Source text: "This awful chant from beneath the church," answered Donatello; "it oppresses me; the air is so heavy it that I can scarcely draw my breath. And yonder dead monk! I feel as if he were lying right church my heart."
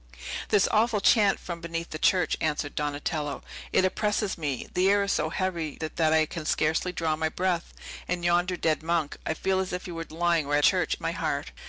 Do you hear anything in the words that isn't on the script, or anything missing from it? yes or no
no